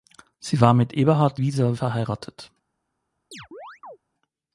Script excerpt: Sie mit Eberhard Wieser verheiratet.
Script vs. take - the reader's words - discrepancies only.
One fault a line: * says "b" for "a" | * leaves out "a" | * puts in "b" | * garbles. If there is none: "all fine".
* puts in "war"